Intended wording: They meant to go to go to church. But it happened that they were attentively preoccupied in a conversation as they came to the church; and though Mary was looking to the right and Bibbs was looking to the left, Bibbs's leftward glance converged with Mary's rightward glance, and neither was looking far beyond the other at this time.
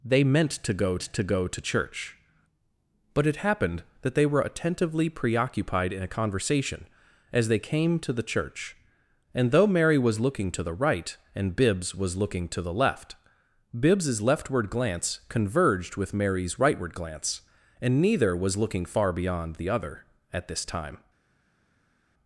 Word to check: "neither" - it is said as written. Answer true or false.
true